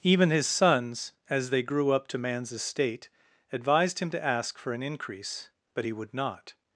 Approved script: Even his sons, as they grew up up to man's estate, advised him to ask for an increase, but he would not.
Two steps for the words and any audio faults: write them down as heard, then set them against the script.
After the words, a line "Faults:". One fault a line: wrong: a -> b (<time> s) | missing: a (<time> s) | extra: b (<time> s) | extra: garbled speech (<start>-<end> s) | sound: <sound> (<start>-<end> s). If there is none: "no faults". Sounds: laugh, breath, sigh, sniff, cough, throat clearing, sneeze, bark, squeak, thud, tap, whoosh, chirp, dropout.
Even his sons, as they grew up to man's estate, advised him to ask for an increase, but he would not.
Faults:
missing: up (2.1 s)